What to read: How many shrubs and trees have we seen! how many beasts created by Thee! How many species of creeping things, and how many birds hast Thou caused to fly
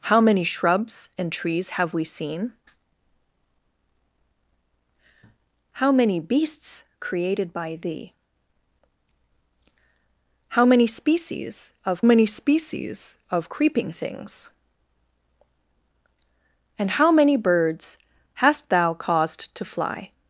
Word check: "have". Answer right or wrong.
right